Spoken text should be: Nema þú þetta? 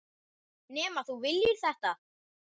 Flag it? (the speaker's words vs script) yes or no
yes